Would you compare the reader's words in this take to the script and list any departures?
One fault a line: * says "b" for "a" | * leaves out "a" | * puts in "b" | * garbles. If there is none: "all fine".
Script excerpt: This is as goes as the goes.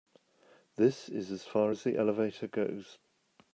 * says "far" for "goes"
* puts in "elevator"